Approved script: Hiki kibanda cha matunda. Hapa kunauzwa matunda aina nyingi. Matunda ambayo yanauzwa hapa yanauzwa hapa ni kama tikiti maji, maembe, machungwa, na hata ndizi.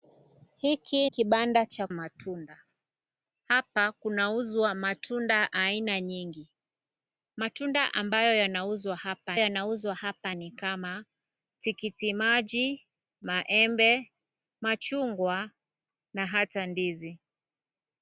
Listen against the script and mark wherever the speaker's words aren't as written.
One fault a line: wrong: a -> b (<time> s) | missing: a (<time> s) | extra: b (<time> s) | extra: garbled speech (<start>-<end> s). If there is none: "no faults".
no faults